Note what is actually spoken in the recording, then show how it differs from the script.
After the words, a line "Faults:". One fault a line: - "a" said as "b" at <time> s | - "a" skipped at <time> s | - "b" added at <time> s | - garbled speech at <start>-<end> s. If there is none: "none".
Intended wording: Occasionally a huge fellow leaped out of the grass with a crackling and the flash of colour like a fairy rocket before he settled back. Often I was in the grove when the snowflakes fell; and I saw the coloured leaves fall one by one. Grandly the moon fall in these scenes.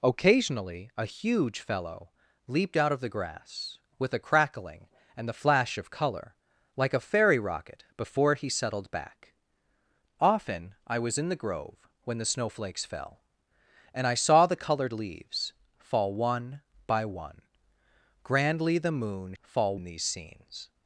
Occasionally a huge fellow leaped out of the grass with a crackling and the flash of colour like a fairy rocket before he settled back. Often I was in the grove when the snowflakes fell; and I saw the coloured leaves fall one by one. Grandly the moon fall in these scenes.
Faults:
none